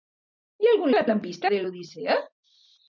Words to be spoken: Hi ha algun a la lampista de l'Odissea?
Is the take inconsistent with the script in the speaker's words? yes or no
no